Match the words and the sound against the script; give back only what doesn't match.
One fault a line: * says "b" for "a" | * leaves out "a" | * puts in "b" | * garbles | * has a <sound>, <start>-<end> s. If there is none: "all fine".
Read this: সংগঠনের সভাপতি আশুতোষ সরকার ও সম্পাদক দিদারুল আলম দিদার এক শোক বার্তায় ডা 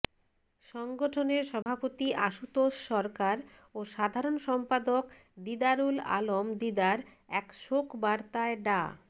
* has a dropout, 1.6-1.7 s
* puts in "সাধারণ"